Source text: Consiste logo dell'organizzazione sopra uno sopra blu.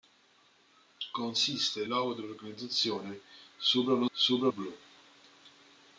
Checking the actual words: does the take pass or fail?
pass